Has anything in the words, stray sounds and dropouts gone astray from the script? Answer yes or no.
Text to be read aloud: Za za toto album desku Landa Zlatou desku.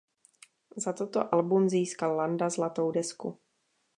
yes